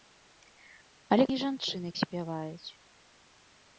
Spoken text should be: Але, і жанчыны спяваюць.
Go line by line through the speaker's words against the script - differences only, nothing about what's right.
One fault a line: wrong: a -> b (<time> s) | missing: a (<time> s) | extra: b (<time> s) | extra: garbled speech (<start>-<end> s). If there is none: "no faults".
no faults